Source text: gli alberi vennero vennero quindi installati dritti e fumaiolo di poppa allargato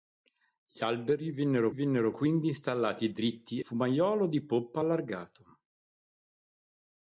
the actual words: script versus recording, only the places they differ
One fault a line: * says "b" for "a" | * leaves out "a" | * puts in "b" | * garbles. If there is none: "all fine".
all fine